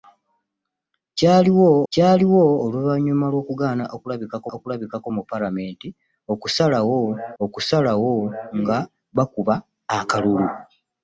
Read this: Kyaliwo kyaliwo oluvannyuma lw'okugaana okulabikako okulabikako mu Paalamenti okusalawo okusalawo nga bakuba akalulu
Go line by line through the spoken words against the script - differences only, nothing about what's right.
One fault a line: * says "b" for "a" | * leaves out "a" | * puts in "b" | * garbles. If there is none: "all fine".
all fine